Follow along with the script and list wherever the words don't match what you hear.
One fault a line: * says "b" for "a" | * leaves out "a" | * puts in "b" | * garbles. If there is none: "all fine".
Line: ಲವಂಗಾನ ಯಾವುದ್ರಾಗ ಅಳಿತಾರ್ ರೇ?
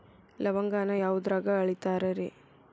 all fine